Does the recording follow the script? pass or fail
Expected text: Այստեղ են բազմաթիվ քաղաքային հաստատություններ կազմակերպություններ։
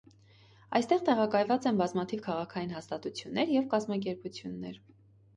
fail